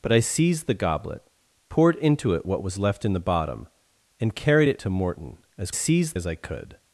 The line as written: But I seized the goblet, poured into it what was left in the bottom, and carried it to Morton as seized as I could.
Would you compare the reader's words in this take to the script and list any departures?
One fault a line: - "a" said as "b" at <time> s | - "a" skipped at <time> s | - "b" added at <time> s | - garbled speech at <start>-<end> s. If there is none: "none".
none